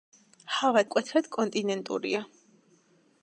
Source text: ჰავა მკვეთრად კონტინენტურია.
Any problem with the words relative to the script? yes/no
no